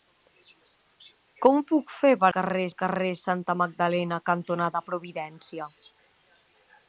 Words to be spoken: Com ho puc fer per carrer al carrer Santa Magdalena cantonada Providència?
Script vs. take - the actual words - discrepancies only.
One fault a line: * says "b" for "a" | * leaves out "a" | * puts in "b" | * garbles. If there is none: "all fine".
all fine